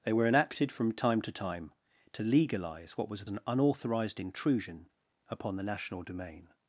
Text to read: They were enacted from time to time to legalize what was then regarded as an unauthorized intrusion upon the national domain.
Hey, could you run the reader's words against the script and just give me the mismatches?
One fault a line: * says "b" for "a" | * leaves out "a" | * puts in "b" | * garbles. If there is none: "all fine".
* leaves out "then regarded as"